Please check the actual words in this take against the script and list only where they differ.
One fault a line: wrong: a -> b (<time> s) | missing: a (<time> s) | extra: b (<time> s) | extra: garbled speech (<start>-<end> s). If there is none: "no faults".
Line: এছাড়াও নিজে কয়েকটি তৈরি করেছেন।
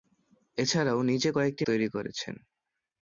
no faults